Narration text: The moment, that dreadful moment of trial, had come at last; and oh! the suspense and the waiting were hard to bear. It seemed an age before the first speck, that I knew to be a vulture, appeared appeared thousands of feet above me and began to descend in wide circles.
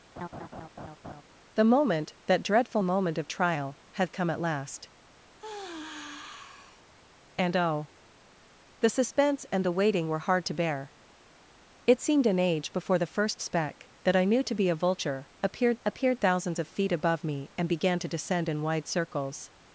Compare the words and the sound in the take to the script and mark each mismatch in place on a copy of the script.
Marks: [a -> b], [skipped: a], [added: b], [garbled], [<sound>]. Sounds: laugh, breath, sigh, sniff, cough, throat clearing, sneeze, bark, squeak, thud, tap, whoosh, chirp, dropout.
[laugh] The moment, that dreadful moment of trial, had come at last; [sigh] and oh! the suspense and the waiting were hard to bear. It seemed an age before the first speck, that I knew to be a vulture, appeared appeared thousands of feet above me and began to descend in wide circles.